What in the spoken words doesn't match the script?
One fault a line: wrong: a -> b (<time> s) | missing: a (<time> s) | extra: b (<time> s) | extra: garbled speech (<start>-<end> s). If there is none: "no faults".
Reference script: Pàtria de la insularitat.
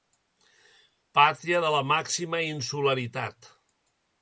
extra: màxima (1.9 s)